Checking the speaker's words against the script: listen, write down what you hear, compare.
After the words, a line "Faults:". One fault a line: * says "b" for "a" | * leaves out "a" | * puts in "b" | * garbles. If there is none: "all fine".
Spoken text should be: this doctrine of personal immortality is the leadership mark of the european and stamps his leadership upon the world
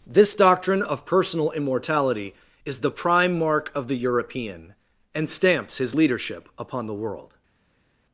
this doctrine of personal immortality is the prime mark of the european and stamps his leadership upon the world
Faults:
* says "prime" for "leadership"